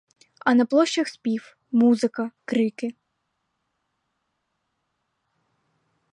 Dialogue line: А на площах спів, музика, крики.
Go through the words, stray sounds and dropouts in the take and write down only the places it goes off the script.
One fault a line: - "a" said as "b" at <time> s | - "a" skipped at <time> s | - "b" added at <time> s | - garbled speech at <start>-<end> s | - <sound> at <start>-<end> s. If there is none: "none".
none